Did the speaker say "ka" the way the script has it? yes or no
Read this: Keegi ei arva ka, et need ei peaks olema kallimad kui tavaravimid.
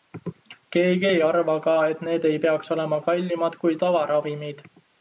yes